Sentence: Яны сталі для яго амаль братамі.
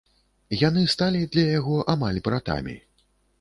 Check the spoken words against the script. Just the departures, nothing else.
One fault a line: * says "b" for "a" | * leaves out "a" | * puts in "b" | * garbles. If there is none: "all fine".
all fine